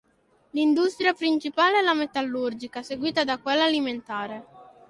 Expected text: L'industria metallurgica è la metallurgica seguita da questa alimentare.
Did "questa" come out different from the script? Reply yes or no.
yes